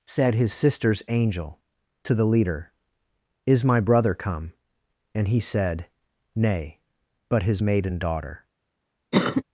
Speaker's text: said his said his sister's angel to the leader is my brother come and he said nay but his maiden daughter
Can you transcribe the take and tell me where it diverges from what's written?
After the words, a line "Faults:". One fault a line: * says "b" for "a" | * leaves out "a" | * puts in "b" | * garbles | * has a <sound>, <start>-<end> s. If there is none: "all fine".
said his sister's angel to the leader is my brother come and he said nay but his maiden daughter
Faults:
* leaves out "said his"
* has a cough, 9.1-9.4 s